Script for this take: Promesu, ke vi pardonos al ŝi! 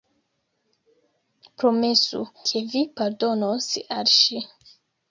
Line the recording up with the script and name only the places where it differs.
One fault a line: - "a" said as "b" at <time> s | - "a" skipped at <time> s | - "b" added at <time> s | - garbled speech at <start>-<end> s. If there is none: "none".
none